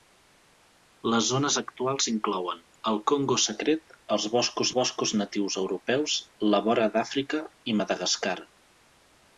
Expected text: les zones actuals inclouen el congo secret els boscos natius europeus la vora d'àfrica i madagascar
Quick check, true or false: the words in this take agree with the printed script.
false